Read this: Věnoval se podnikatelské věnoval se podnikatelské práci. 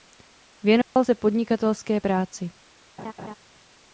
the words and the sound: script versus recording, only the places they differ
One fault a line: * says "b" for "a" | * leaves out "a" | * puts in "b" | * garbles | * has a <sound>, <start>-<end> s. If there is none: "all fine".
* has a dropout, 0.8-1.0 s
* leaves out "věnoval se podnikatelské"
* has a laugh, 3.0-3.3 s